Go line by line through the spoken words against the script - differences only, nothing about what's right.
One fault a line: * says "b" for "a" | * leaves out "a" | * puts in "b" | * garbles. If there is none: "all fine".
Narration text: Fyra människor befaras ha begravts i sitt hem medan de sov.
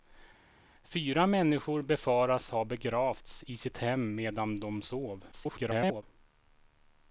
* garbles